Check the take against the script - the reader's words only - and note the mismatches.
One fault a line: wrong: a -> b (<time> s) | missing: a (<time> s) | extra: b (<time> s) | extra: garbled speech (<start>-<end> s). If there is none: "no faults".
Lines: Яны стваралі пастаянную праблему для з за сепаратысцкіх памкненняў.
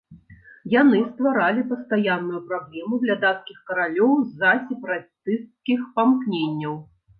extra: дацкіх каралёў (3.3 s)